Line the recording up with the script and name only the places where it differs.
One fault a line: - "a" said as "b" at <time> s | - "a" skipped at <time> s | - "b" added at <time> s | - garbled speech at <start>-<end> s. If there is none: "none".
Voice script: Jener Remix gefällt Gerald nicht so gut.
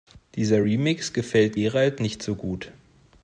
- "Jener" said as "Dieser" at 0.3 s